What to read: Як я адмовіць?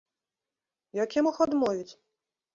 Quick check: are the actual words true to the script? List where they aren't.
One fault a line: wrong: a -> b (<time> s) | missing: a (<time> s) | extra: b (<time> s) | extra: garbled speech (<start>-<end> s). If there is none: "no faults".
extra: мог (1.2 s)